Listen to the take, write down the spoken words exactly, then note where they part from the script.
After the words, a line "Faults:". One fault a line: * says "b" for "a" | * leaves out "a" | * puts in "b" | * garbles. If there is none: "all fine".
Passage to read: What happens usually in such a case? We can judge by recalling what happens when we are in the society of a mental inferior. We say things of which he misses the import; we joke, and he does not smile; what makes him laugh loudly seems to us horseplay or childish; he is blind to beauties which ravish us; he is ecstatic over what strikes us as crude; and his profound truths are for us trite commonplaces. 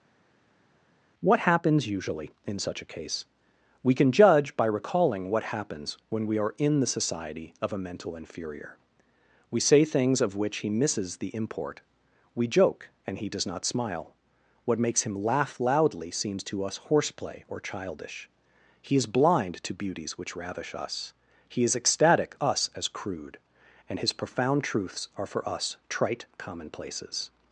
What happens usually in such a case? We can judge by recalling what happens when we are in the society of a mental inferior. We say things of which he misses the import; we joke, and he does not smile; what makes him laugh loudly seems to us horseplay or childish; he is blind to beauties which ravish us; he is ecstatic us as crude; and his profound truths are for us trite commonplaces.
Faults:
* leaves out "over what strikes"